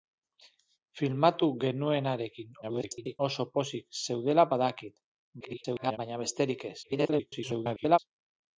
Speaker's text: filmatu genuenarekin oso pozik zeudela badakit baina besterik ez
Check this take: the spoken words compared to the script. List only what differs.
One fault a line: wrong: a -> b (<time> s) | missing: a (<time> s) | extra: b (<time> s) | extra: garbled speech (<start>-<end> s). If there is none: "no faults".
extra: garbled speech (2.6-3.2 s)
extra: garbled speech (5.4-6.0 s)
extra: garbled speech (6.8-8.0 s)